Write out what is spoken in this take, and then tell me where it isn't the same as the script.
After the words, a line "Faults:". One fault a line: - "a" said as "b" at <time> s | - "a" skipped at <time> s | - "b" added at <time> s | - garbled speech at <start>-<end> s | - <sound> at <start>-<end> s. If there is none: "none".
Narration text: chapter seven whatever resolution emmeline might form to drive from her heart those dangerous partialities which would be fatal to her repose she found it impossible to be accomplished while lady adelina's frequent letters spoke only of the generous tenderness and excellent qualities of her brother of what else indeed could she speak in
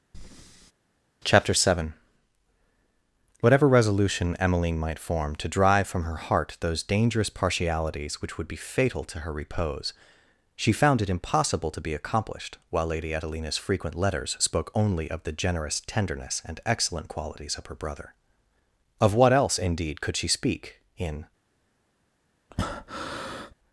chapter seven whatever resolution emmeline might form to drive from her heart those dangerous partialities which would be fatal to her repose she found it impossible to be accomplished while lady adelina's frequent letters spoke only of the generous tenderness and excellent qualities of her brother of what else indeed could she speak in
Faults:
- breath at 0.1-0.7 s
- breath at 22.5-23.5 s